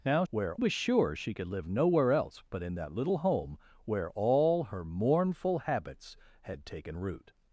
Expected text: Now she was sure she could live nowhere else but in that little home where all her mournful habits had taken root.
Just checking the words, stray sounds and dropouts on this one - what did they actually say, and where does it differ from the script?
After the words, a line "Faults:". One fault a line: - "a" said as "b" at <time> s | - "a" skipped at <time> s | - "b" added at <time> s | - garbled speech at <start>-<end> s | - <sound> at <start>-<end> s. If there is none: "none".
Now where was sure she could live nowhere else but in that little home where all her mournful habits had taken root.
Faults:
- "she" said as "where" at 0.3 s